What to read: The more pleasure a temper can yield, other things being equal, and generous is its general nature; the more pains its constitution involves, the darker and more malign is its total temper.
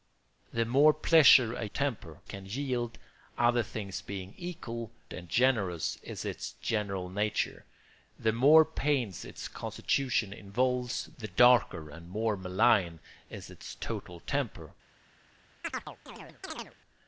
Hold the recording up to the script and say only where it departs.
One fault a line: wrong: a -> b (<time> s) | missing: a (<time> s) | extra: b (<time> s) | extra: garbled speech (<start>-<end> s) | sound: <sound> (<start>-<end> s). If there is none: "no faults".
sound: chirp (15.6-16.8 s)